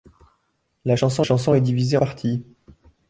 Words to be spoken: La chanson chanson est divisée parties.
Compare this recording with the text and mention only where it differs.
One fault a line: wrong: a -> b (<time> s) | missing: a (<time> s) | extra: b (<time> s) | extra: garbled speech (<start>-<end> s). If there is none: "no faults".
no faults